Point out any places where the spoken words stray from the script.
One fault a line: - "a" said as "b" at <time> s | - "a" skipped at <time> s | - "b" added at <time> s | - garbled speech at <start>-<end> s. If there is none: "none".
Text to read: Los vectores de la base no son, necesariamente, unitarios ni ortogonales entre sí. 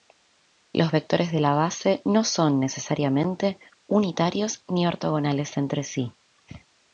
none